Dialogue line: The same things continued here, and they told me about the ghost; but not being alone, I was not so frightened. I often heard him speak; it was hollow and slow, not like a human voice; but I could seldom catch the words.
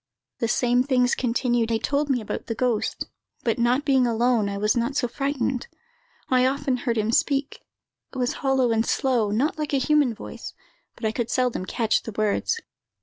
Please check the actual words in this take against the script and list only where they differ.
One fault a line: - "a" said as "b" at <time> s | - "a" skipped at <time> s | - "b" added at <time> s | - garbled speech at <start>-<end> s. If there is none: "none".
- "here and" skipped at 1.7 s